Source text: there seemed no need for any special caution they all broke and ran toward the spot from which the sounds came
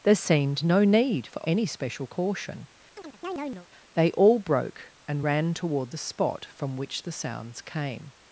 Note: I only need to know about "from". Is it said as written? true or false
true